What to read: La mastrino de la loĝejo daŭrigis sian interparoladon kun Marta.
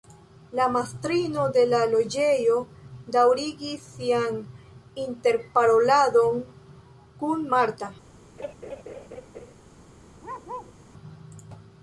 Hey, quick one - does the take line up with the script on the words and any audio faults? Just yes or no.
no